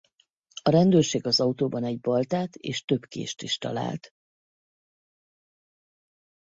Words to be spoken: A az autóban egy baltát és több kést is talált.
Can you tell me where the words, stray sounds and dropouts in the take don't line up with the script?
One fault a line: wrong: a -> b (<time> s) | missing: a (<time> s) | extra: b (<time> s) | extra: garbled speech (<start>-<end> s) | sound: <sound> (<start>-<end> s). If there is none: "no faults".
extra: rendőrség (0.7 s)